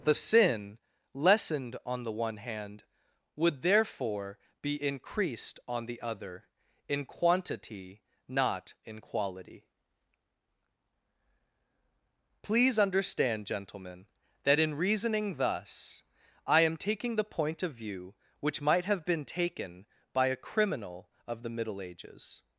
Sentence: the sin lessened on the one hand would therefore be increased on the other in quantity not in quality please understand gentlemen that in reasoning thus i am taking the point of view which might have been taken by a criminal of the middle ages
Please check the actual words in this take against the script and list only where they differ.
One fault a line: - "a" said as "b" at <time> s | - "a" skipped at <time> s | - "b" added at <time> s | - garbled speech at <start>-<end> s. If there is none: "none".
none